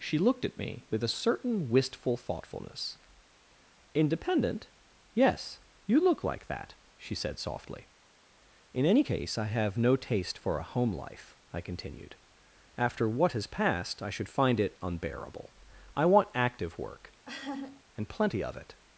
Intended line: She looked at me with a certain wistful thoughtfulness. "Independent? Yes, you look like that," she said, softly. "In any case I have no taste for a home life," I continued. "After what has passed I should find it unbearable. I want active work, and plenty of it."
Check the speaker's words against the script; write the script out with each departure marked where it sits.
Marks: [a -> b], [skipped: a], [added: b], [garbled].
She looked at me with a certain wistful thoughtfulness. "Independent? Yes, you look like that," she said, softly. "In any case I have no taste for a home life," I continued. "After what has passed I should find it unbearable. I want active work, and plenty of it."